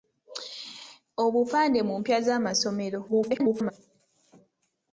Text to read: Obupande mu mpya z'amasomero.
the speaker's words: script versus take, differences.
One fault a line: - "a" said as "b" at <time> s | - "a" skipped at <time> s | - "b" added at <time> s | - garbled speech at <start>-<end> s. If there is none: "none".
- garbled speech at 3.1-3.7 s